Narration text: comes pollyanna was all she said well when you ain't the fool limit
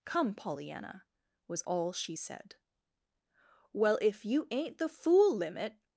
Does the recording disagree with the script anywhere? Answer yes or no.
yes